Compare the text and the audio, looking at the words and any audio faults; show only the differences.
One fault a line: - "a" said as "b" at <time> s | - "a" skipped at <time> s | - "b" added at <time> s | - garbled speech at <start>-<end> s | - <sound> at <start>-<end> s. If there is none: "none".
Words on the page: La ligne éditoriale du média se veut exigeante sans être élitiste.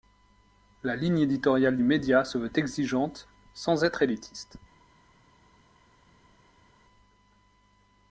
none